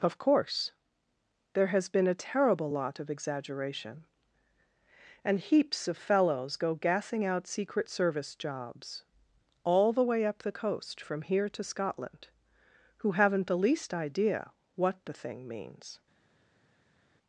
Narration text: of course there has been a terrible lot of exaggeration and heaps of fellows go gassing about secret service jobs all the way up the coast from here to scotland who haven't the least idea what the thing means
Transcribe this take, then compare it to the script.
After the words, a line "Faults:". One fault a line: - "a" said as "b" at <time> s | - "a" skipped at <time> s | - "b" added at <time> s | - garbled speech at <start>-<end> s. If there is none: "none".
of course there has been a terrible lot of exaggeration and heaps of fellows go gassing out secret service jobs all the way up the coast from here to scotland who haven't the least idea what the thing means
Faults:
- "about" said as "out" at 7.3 s